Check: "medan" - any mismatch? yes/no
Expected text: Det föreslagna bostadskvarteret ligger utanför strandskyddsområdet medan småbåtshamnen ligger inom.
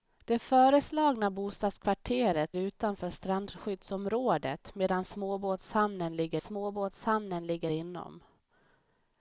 no